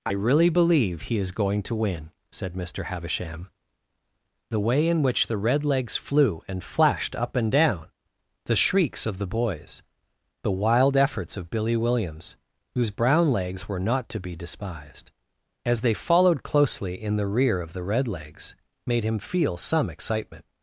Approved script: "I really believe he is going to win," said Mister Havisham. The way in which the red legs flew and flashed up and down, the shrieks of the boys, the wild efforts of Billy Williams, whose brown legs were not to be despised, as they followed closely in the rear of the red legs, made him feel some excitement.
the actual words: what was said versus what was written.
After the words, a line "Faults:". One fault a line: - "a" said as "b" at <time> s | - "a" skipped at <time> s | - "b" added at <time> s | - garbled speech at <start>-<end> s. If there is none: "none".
"I really believe he is going to win," said Mister Havisham. The way in which the red legs flew and flashed up and down, the shrieks of the boys, the wild efforts of Billy Williams, whose brown legs were not to be despised, as they followed closely in the rear of the red legs, made him feel some excitement.
Faults:
none